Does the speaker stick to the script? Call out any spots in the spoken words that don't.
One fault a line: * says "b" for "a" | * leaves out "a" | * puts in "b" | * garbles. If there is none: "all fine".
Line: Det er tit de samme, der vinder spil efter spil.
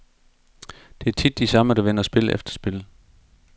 all fine